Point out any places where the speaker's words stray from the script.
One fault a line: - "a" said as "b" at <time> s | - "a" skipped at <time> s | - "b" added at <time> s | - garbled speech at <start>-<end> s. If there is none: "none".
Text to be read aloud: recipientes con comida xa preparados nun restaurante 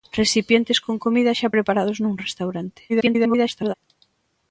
- garbled speech at 2.9-3.7 s